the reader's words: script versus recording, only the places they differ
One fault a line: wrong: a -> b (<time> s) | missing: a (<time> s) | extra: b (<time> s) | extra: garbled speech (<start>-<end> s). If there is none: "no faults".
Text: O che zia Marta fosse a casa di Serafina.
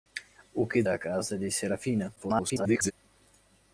missing: zia Marta fosse (0.9 s)
extra: garbled speech (2.2-2.9 s)